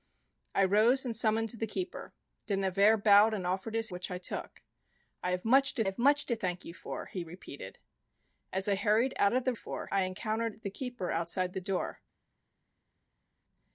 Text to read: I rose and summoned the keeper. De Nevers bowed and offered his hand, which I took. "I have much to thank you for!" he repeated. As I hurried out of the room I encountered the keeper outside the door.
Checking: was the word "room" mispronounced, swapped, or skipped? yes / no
yes